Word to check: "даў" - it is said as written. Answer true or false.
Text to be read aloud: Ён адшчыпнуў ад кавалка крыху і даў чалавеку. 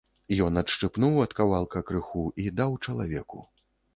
true